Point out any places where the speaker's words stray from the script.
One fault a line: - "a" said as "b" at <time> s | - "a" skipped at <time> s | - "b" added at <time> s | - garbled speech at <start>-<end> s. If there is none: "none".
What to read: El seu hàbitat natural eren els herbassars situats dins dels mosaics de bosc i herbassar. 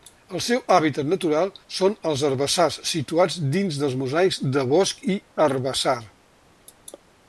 - "eren" said as "són" at 1.8 s